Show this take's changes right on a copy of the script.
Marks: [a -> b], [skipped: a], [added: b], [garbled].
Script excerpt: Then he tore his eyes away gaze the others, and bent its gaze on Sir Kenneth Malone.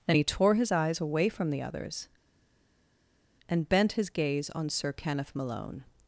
Then he tore his eyes away [gaze -> from] the others, and bent [its -> his] gaze on Sir Kenneth Malone.